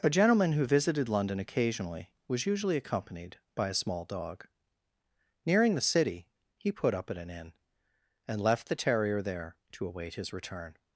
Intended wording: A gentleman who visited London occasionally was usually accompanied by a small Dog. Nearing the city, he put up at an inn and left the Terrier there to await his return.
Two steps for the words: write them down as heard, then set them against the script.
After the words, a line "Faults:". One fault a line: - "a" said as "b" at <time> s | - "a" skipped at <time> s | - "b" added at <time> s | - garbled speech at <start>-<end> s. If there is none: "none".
A gentleman who visited London occasionally was usually accompanied by a small Dog. Nearing the city, he put up at an inn and left the Terrier there to await his return.
Faults:
none